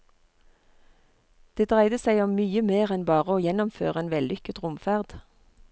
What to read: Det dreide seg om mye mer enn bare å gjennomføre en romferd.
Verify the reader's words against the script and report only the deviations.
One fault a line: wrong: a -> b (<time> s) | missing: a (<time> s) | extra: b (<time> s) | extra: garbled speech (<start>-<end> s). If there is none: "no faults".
extra: vellykket (4.1 s)